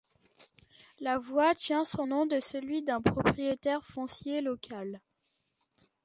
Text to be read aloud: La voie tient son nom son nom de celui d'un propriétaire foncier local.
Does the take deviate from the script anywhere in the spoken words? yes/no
yes